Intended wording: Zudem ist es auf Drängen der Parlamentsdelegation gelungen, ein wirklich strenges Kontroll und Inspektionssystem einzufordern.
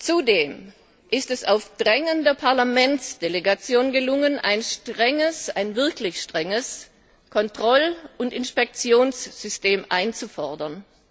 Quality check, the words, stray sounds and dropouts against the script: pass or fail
pass